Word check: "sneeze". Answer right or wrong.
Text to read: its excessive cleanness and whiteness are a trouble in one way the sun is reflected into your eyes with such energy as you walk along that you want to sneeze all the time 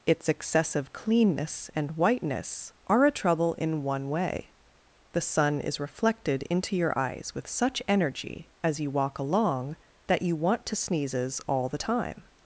wrong